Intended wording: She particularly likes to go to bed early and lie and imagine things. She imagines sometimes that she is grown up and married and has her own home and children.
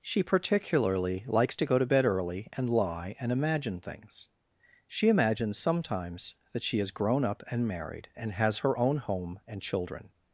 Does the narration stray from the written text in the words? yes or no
no